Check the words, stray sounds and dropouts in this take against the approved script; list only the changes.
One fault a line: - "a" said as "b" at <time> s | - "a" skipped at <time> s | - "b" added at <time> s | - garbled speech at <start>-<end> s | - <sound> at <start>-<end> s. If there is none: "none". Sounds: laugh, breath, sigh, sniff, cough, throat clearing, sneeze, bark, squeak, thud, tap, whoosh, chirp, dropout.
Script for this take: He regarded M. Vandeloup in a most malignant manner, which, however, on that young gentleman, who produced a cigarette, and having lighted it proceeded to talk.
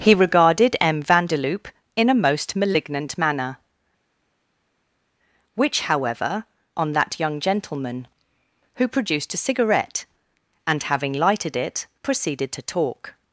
none